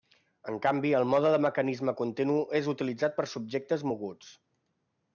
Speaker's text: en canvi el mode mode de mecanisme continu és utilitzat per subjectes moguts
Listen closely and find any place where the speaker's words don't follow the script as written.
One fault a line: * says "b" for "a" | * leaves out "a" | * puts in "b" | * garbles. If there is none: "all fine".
* leaves out "mode"